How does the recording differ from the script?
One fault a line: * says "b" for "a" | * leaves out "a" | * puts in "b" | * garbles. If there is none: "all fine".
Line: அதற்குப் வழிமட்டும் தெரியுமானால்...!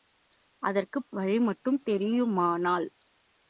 all fine